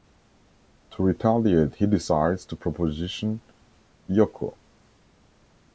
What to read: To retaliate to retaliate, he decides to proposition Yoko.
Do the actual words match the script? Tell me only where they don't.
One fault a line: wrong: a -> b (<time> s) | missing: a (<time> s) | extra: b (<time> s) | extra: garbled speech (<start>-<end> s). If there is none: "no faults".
missing: to retaliate (1.8 s)